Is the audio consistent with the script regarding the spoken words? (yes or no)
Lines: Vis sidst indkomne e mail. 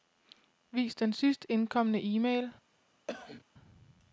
no